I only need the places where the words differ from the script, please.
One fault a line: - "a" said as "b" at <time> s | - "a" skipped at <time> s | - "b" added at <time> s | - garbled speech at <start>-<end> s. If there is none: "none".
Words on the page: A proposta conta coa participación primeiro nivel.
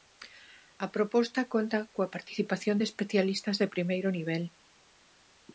- "de especialistas de" added at 2.8 s